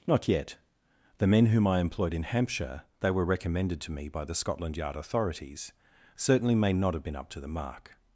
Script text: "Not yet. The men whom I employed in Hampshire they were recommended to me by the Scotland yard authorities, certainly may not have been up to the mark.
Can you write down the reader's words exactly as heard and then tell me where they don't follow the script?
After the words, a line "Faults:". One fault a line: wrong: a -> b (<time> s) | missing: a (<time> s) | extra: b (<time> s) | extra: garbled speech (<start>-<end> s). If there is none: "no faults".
"Not yet. The men whom I employed in Hampshire they were recommended to me by the Scotland yard authorities, certainly may not have been up to the mark.
Faults:
no faults